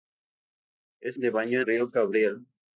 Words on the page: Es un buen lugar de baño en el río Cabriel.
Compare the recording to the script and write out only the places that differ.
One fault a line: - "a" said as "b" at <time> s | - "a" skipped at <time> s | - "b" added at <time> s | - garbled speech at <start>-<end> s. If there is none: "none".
- "un buen lugar" skipped at 1.2 s
- "el" skipped at 1.7 s